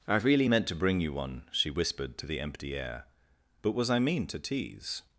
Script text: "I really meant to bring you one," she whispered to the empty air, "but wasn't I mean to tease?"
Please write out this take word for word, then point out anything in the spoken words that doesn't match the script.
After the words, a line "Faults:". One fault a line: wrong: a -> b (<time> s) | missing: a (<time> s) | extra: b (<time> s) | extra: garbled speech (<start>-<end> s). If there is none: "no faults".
"I really meant to bring you one," she whispered to the empty air, "but was I mean to tease?"
Faults:
wrong: wasn't -> was (3.7 s)